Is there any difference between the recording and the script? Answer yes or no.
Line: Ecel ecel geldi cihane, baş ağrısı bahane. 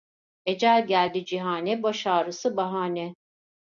yes